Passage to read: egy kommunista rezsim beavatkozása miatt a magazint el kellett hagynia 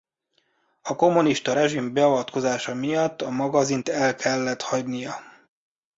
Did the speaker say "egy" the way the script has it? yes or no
no